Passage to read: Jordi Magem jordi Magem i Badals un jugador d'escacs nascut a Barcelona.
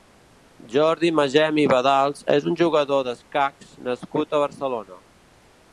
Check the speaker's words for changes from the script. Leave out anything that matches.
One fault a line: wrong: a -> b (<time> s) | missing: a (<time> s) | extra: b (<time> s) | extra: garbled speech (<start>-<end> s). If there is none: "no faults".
missing: jordi Magem (1.6 s)
extra: és (2.4 s)